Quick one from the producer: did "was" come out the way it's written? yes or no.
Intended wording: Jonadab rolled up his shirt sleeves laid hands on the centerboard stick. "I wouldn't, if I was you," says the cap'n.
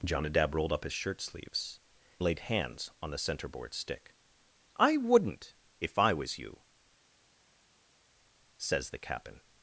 yes